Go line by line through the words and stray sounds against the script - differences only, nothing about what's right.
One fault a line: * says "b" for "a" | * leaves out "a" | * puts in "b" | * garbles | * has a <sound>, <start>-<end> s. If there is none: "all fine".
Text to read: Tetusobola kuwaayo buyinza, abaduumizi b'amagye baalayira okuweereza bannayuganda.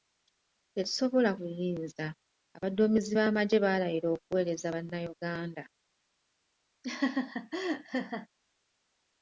* leaves out "kuwaayo"
* has a laugh, 6.8-8.3 s